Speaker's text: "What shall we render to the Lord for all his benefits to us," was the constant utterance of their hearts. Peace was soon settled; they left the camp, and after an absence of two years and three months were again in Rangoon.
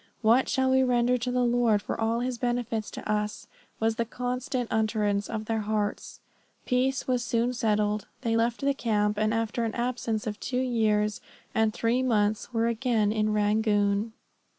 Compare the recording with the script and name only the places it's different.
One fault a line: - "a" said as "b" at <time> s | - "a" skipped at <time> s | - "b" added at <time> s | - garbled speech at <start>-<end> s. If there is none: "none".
none